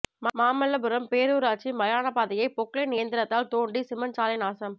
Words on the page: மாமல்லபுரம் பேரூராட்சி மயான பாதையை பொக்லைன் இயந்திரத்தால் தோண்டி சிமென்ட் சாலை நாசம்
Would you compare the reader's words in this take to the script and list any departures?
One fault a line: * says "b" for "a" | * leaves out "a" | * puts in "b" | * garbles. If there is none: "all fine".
all fine